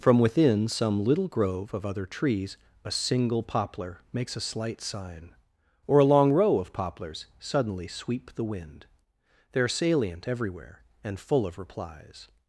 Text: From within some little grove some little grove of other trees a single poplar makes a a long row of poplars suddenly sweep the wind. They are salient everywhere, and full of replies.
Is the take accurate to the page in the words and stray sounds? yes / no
no